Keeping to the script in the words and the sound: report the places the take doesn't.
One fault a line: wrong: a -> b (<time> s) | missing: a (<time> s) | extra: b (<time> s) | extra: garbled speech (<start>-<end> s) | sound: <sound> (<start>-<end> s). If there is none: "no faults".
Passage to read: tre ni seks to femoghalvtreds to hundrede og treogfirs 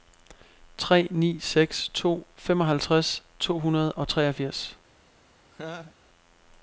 sound: laugh (5.5-6.0 s)